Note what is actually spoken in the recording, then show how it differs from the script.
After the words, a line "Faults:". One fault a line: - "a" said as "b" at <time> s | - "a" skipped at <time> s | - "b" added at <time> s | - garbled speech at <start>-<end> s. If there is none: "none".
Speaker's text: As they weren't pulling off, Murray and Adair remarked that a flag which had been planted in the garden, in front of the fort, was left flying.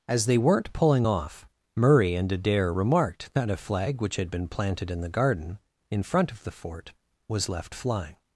As they weren't pulling off, Murray and Adair remarked that a flag which had been planted in the garden, in front of the fort, was left flying.
Faults:
none